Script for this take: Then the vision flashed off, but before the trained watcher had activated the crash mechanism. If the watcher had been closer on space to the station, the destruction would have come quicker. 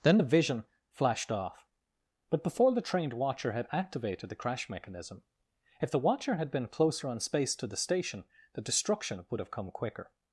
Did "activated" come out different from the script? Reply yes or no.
no